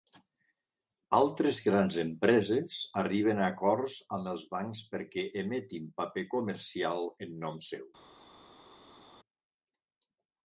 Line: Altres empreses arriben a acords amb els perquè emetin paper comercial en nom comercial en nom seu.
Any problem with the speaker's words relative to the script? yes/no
yes